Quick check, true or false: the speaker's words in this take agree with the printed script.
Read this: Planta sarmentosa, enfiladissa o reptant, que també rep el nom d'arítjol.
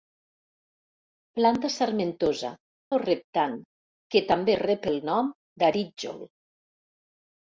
false